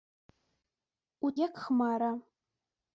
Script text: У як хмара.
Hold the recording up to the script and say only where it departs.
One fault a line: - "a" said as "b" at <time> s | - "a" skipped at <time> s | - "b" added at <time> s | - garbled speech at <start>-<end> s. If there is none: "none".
none